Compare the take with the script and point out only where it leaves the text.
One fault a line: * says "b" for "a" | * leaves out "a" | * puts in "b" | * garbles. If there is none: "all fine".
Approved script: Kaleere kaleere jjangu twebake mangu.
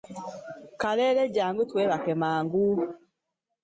* leaves out "kaleere"